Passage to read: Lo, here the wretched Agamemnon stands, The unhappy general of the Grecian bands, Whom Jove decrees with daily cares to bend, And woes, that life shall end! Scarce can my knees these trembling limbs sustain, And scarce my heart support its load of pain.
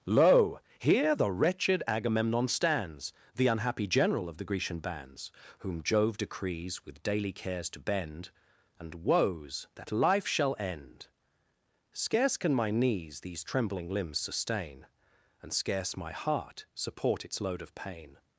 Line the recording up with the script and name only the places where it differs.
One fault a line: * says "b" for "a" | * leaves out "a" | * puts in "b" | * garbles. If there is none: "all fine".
all fine